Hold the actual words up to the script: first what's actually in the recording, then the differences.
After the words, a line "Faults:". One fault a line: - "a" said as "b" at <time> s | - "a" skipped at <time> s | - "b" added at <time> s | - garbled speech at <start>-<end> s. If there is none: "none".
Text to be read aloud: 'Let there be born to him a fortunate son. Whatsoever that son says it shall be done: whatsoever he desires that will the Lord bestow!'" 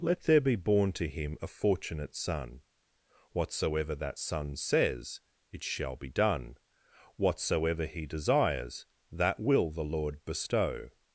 'Let there be born to him a fortunate son. Whatsoever that son says it shall be done: whatsoever he desires that will the Lord bestow!'"
Faults:
none